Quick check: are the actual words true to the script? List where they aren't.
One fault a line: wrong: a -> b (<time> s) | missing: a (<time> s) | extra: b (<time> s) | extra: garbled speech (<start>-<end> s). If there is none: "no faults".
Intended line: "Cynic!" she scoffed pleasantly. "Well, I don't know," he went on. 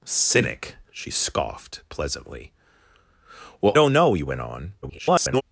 missing: I (3.7 s)
extra: garbled speech (4.8-5.4 s)